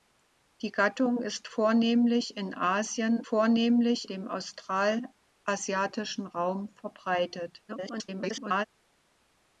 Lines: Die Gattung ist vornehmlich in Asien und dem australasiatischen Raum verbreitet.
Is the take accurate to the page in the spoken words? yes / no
no